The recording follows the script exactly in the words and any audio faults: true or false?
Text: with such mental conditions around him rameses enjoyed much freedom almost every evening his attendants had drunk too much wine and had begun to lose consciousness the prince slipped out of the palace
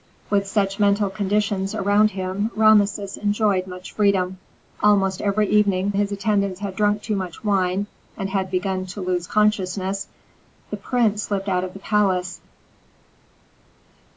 true